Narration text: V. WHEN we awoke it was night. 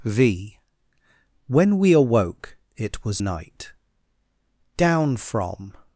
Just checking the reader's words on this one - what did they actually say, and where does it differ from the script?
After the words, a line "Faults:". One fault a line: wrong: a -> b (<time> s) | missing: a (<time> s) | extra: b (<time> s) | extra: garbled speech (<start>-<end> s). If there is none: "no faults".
V. WHEN we awoke it was night. Down from
Faults:
extra: Down from (4.8 s)